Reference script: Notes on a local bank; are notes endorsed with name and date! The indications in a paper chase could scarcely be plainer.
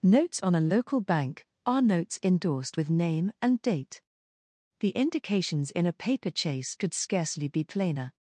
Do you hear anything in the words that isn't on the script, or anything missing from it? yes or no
no